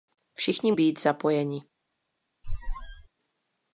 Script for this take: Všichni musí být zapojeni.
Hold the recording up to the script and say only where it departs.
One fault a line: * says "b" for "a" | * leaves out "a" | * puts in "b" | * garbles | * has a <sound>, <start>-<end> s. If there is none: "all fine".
* leaves out "musí"
* has a squeak, 2.4-3.1 s